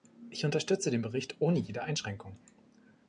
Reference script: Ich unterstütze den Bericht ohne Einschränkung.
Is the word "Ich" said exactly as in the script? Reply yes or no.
yes